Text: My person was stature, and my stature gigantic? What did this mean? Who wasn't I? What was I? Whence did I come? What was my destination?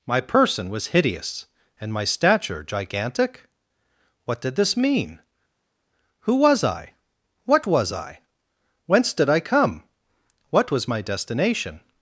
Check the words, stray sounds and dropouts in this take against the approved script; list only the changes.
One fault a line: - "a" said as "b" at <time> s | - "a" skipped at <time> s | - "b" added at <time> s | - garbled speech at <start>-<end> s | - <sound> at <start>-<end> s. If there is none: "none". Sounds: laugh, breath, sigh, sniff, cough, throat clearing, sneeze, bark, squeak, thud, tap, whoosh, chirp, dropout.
- "stature" said as "hideous" at 0.9 s
- "wasn't" said as "was" at 6.4 s